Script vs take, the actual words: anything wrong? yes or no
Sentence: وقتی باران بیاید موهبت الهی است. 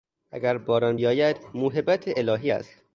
yes